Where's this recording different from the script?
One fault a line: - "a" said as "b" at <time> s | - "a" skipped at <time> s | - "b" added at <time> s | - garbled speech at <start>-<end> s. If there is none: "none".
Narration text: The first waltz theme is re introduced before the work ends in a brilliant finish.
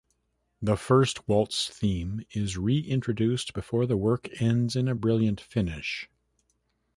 none